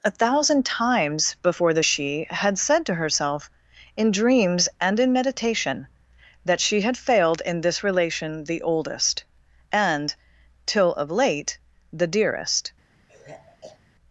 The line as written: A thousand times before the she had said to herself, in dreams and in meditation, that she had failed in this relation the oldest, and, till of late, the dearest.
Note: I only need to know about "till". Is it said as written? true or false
true